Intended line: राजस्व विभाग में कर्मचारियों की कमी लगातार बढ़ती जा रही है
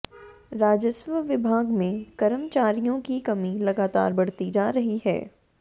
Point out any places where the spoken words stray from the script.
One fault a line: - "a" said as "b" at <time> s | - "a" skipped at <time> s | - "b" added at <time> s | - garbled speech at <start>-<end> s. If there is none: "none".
none